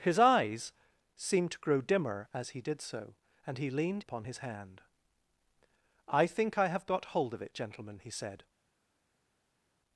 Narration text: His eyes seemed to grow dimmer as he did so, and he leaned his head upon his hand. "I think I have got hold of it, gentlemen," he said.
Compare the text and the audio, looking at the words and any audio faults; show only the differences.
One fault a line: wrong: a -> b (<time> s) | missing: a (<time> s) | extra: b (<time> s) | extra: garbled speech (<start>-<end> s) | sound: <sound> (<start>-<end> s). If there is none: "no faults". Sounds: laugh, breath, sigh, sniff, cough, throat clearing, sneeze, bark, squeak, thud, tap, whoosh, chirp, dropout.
missing: his head (4.0 s)